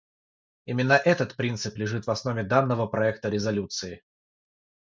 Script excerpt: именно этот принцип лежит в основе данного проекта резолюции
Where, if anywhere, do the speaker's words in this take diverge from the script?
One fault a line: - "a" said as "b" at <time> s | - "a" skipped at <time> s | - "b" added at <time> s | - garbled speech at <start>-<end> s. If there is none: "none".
none